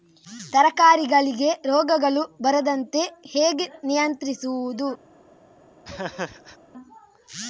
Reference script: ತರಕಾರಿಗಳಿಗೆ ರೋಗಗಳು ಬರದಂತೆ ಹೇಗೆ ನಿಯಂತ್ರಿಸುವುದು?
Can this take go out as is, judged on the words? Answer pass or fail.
pass